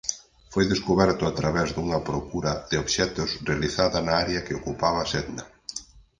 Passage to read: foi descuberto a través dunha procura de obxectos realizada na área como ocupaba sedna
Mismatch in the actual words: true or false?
true